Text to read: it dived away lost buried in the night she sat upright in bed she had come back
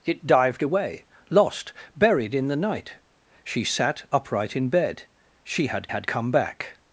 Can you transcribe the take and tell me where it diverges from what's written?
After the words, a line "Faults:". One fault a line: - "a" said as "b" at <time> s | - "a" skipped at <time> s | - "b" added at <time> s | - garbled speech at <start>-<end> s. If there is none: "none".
it dived away lost buried in the night she sat upright in bed she had had come back
Faults:
- "had" added at 5.9 s